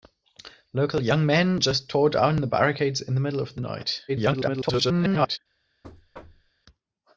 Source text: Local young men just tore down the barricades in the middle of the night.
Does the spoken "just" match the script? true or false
true